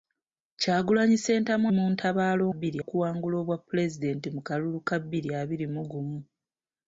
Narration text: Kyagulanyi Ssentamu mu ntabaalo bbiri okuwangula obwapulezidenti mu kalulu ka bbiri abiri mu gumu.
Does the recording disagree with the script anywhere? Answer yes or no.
no